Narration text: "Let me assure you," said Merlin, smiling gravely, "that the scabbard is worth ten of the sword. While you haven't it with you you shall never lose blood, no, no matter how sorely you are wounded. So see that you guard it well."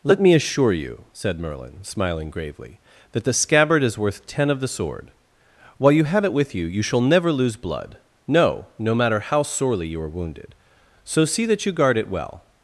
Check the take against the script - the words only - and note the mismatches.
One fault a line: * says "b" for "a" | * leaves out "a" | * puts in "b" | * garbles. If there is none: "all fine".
* says "have" for "haven't"